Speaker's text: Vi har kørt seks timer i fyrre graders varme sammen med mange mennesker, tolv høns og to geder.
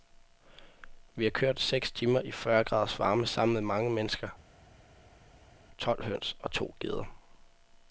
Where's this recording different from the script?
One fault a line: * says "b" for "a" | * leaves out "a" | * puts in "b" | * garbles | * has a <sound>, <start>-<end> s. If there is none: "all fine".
all fine